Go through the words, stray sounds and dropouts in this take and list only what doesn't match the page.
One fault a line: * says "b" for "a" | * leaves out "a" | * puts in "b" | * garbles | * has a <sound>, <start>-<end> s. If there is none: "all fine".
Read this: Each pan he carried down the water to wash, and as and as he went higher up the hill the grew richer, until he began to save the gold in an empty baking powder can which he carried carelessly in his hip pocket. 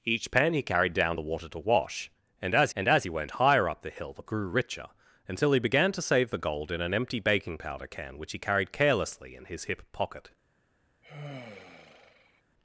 * has a sigh, 11.0-12.4 s